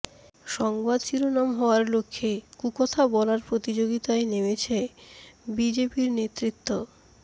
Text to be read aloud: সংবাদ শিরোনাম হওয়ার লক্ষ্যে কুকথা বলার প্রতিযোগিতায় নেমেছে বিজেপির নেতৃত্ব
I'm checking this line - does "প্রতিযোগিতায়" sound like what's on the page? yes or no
yes